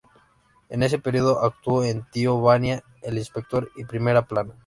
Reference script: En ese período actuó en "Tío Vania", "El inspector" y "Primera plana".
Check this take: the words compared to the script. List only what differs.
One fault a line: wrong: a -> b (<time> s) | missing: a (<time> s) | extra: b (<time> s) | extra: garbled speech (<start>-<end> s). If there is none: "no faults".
no faults